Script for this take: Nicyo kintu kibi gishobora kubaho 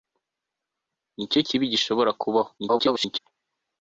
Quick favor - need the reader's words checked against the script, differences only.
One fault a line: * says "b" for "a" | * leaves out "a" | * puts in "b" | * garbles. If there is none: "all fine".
* leaves out "kintu"
* garbles